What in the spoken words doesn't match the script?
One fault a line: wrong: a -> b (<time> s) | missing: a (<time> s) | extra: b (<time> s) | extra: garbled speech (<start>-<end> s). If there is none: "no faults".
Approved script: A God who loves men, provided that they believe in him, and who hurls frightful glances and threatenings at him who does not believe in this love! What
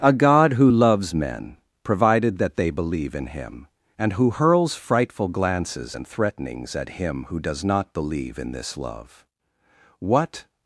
no faults